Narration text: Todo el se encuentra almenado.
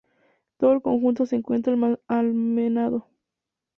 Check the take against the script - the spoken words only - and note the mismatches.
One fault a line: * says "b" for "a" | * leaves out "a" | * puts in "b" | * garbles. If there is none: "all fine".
* puts in "conjunto"